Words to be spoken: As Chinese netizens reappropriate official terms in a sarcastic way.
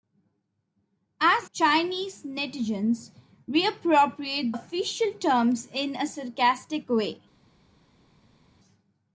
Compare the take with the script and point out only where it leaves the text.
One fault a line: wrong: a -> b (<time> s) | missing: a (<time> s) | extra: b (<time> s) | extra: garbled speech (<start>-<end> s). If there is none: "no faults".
no faults